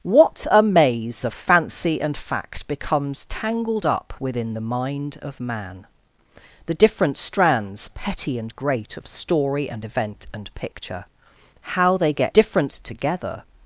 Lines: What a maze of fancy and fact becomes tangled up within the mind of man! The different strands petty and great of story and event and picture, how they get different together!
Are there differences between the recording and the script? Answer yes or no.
no